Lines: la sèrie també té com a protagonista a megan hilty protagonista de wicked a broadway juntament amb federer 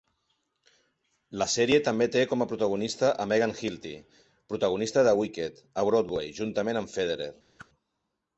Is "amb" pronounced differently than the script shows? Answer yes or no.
no